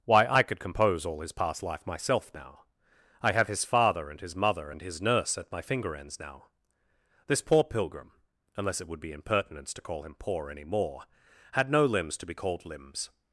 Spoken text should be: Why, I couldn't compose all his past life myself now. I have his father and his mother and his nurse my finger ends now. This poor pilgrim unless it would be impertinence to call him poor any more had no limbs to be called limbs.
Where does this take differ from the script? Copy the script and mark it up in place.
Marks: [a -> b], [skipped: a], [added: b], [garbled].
Why, I [couldn't -> could] compose all his past life myself now. I have his father and his mother and his nurse [added: at] my finger ends now. This poor pilgrim unless it would be impertinence to call him poor any more had no limbs to be called limbs.